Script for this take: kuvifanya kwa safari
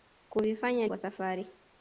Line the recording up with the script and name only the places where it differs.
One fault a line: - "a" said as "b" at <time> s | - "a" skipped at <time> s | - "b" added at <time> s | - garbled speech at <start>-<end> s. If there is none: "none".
none